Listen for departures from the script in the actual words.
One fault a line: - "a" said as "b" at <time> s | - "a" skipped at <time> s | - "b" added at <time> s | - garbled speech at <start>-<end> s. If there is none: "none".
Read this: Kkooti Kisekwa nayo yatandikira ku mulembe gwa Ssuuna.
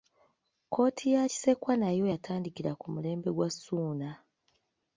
- "ya" added at 1.1 s